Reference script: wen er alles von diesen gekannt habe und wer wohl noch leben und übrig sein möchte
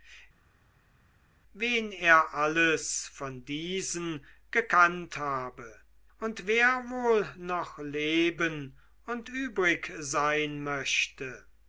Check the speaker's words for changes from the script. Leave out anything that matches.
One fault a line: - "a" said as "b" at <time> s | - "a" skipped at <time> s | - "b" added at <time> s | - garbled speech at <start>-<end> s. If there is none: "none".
none